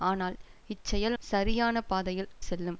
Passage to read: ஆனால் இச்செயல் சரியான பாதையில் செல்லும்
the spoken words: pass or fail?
pass